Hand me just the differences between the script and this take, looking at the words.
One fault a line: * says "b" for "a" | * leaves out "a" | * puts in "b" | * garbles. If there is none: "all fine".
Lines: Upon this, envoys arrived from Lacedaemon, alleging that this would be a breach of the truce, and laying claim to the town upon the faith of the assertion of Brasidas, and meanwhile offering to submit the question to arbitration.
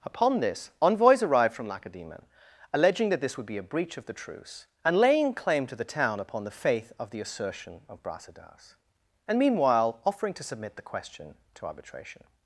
all fine